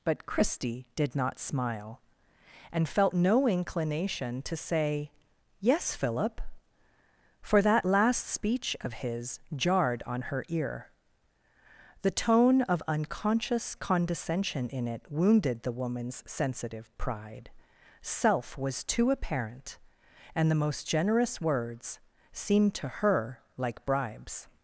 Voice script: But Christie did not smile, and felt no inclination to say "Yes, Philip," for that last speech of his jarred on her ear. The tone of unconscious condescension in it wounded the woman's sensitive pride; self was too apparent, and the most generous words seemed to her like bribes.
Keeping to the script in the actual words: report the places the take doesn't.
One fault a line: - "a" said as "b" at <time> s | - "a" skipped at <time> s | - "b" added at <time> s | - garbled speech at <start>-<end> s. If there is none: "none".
none